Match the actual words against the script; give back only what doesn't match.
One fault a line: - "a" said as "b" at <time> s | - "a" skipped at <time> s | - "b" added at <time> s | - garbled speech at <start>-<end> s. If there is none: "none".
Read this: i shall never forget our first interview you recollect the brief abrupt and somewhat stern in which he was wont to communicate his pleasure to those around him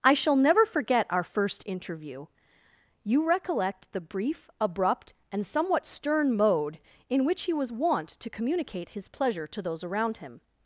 - "mode" added at 6.3 s